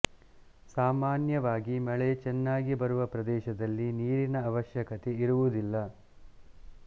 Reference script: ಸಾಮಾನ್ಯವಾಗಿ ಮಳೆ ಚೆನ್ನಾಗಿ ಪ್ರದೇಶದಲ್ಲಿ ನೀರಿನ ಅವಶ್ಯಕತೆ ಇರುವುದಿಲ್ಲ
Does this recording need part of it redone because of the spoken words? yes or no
yes